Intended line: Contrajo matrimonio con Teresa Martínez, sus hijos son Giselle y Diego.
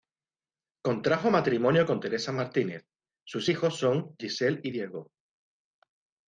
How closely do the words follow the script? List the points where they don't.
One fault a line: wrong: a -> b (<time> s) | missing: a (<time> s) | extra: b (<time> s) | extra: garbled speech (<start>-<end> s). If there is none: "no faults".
no faults